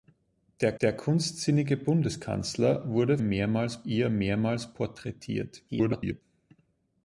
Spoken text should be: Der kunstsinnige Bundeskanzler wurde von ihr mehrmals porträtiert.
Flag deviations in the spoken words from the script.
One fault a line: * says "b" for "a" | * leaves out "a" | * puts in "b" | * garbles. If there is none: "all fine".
* puts in "der"
* says "mehrmals" for "von"
* garbles